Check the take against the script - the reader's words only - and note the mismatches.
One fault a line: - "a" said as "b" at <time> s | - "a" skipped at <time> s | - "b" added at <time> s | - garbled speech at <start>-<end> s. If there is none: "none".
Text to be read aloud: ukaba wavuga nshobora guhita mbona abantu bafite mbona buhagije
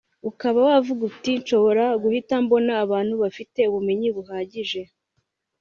- "uti" added at 1.1 s
- "mbona" said as "ubumenyi" at 3.7 s